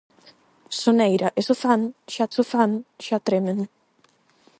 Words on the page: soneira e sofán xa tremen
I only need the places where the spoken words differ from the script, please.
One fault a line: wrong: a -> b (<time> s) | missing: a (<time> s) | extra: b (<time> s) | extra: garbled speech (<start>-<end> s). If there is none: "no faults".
extra: sofán xa (2.4 s)